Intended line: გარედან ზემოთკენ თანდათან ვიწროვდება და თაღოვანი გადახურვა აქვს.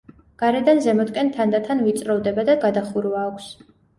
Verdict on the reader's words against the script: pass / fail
fail